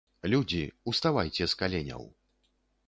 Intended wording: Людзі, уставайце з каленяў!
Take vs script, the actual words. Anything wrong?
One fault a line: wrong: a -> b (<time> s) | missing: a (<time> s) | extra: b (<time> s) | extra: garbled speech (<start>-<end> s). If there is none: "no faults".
no faults